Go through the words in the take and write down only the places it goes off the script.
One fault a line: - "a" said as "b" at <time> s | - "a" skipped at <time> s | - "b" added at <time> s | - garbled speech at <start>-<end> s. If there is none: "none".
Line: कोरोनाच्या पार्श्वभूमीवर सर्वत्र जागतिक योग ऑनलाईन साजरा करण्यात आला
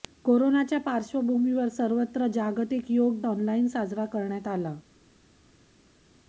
none